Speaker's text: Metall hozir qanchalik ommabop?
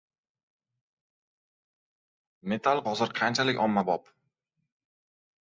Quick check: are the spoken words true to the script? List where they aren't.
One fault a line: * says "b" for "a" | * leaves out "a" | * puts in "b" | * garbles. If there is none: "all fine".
all fine